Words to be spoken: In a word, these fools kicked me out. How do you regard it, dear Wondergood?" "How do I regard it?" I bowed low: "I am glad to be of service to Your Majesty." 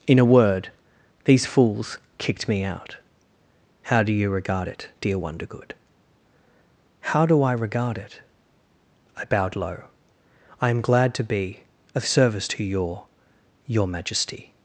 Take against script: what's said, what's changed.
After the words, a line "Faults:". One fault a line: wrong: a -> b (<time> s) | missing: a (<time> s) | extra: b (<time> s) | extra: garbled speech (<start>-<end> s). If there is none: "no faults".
In a word, these fools kicked me out. How do you regard it, dear Wondergood?" "How do I regard it?" I bowed low: "I am glad to be of service to Your Your Majesty."
Faults:
extra: Your (13.7 s)